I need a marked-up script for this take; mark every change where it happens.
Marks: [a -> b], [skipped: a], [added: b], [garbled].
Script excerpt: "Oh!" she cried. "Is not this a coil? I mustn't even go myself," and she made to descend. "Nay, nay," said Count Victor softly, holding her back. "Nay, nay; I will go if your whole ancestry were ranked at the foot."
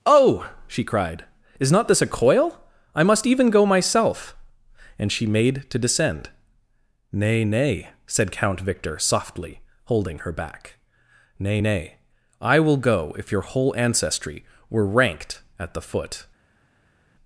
"Oh!" she cried. "Is not this a coil? I [mustn't -> must] even go myself," and she made to descend. "Nay, nay," said Count Victor softly, holding her back. "Nay, nay; I will go if your whole ancestry were ranked at the foot."